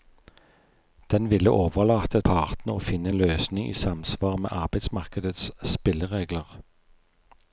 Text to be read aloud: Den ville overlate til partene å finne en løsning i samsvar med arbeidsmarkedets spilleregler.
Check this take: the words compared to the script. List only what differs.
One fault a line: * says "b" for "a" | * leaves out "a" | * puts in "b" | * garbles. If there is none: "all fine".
* leaves out "til"